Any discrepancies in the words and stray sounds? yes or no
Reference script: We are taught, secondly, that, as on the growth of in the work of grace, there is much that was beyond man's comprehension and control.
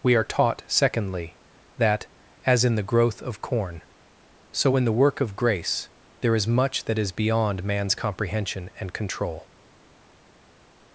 yes